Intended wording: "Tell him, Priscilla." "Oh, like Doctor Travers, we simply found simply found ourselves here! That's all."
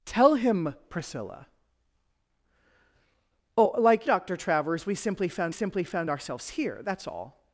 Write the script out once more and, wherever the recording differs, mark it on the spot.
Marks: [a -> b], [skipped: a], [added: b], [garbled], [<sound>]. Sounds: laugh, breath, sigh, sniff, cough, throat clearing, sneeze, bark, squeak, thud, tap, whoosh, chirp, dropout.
"Tell him, Priscilla." "Oh, like Doctor Travers, we simply found simply found ourselves here! That's all."